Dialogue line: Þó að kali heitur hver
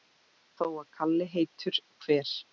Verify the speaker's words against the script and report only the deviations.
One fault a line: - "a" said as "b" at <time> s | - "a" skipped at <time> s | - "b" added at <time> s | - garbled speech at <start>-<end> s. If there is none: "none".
none